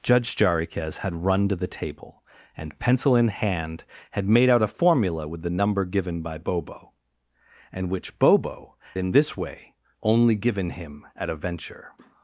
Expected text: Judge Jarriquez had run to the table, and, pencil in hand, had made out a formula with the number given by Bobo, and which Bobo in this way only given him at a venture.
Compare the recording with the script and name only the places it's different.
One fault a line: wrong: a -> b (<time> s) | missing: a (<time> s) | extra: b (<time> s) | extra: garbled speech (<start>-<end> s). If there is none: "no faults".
no faults